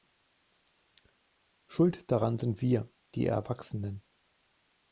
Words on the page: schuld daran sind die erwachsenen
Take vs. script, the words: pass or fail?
fail